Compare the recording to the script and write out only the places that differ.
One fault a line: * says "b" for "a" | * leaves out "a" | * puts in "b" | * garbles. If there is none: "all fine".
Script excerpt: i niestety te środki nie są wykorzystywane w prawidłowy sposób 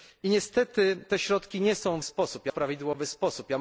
* says "sposób" for "wykorzystywane"